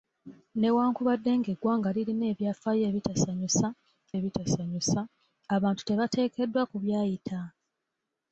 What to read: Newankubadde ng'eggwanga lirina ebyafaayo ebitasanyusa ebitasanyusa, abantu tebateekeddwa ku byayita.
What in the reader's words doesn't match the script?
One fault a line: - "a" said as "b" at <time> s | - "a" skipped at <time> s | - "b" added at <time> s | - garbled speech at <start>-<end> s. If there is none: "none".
none